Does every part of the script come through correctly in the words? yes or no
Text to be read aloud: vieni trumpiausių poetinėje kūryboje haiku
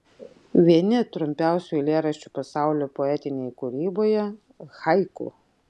no